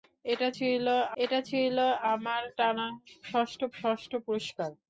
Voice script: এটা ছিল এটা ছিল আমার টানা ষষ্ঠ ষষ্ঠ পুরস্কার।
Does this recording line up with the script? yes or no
yes